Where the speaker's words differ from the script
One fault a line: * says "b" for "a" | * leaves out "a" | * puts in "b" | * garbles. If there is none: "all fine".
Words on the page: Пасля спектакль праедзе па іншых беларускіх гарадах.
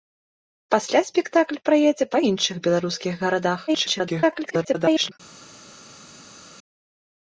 * garbles